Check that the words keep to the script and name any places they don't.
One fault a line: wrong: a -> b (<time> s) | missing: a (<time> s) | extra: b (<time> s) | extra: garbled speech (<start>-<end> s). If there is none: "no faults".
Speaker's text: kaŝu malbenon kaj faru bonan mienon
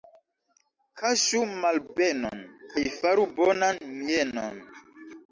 no faults